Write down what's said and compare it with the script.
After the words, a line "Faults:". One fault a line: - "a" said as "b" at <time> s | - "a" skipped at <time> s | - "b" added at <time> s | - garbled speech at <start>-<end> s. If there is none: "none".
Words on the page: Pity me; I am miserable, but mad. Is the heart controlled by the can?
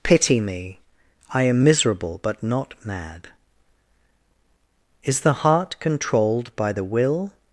Pity me; I am miserable, but not mad. Is the heart controlled by the will?
Faults:
- "not" added at 2.4 s
- "can" said as "will" at 6.8 s